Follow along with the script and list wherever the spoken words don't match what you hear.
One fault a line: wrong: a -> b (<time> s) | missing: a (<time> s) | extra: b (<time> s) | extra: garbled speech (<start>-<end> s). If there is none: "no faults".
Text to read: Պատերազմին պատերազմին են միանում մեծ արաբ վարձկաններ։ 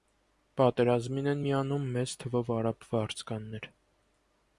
missing: պատերազմին (1.3 s)
extra: թվով (2.2 s)